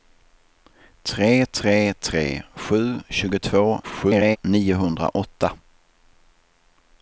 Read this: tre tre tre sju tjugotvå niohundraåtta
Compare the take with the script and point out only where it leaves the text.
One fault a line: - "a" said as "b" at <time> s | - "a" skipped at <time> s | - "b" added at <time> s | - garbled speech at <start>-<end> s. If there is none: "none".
- garbled speech at 3.8-4.4 s